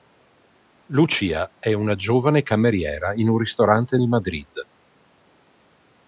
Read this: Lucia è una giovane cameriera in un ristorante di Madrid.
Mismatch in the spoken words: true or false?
false